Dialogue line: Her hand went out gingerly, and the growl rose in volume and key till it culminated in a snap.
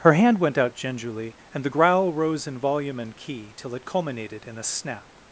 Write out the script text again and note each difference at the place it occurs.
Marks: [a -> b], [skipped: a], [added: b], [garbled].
Her hand went out gingerly, and the growl rose in volume and key till it culminated in a snap.